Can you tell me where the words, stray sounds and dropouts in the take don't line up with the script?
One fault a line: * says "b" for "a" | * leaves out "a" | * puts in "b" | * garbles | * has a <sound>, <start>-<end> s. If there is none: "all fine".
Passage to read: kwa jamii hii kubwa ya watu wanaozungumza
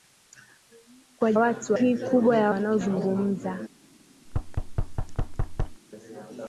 * says "watu" for "jamii"
* leaves out "watu"
* has a thud, 4.3-5.8 s